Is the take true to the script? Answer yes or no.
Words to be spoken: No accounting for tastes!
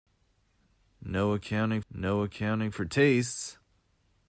no